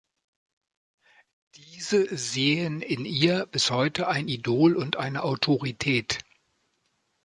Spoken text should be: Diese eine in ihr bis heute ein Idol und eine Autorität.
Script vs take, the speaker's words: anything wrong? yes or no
yes